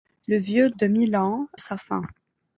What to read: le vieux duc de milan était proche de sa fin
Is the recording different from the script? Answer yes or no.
yes